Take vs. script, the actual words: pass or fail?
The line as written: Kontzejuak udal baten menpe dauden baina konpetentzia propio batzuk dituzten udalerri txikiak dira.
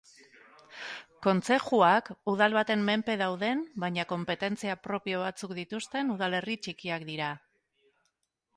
pass